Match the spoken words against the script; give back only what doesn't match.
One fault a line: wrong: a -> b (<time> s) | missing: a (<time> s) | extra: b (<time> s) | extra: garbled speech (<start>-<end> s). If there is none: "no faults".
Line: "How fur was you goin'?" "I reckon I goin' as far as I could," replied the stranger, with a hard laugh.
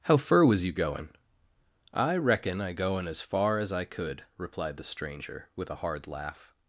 no faults